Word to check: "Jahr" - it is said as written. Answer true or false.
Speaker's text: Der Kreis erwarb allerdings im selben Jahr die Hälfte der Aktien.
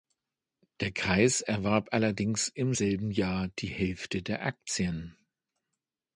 true